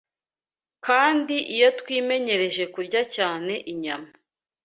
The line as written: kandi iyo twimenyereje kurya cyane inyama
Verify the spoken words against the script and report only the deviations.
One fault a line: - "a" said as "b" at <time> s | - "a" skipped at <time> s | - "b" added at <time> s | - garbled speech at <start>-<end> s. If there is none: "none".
none